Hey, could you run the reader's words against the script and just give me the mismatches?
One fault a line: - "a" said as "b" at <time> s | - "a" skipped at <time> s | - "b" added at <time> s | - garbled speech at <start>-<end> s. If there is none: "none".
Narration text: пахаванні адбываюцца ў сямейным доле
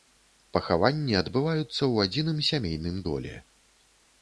- "адзіным" added at 2.1 s